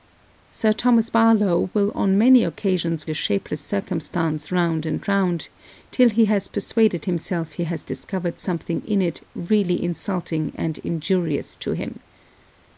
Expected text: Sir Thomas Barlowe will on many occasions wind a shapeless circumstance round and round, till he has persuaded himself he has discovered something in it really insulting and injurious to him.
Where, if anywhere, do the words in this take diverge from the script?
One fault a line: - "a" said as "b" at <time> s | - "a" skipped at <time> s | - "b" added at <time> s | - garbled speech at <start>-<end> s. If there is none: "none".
- "wind" skipped at 3.1 s